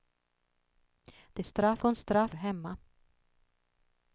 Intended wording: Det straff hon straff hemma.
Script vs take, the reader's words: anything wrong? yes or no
no